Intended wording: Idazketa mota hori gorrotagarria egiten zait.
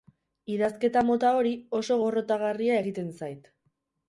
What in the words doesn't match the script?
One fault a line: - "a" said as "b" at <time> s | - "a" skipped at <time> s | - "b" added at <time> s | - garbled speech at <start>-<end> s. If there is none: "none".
- "oso" added at 1.8 s